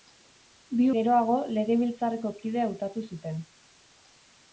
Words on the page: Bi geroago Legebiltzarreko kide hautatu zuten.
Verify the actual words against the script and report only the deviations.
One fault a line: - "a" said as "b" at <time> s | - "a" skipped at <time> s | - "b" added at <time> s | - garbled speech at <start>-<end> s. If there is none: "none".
none